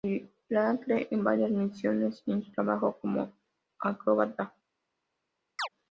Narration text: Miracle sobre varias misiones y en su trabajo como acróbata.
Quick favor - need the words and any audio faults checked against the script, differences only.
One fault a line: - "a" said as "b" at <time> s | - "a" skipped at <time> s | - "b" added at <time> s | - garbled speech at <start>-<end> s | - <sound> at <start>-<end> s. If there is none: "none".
- "sobre" said as "en" at 1.1 s
- chirp at 5.6-5.7 s